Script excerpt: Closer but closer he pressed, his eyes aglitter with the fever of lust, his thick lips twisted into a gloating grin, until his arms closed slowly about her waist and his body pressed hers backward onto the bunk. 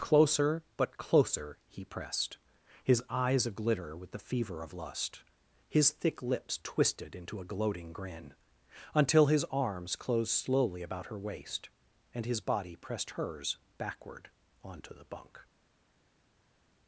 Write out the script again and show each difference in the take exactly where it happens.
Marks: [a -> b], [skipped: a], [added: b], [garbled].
Closer but closer he pressed, his eyes aglitter with the fever of lust, his thick lips twisted into a gloating grin, until his arms closed slowly about her waist and his body pressed hers backward onto the bunk.